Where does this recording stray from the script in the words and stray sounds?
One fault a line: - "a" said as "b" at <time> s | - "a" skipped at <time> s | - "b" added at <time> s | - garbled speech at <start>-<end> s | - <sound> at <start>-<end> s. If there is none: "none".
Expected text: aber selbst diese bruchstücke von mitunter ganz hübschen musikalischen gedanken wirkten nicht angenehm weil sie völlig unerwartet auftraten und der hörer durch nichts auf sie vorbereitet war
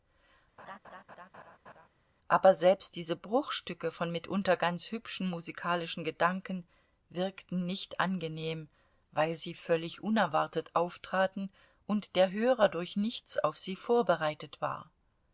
- laugh at 0.6-1.9 s